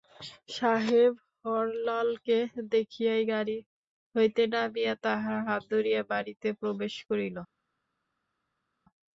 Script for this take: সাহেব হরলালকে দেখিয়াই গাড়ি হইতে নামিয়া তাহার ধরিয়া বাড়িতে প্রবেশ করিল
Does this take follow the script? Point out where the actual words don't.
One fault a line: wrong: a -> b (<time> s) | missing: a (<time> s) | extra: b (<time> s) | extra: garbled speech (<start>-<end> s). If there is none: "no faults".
extra: হাত (5.5 s)